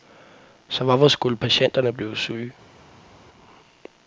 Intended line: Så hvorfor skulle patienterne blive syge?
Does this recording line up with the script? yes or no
yes